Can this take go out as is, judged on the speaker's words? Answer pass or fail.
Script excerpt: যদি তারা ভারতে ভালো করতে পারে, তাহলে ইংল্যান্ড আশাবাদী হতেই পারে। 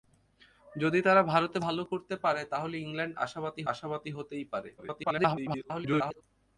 fail